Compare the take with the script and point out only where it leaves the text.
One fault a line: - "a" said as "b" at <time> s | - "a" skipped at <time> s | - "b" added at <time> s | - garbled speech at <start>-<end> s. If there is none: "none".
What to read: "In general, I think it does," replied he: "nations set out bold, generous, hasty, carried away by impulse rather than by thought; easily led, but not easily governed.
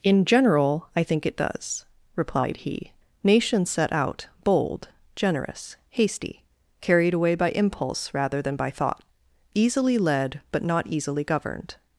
none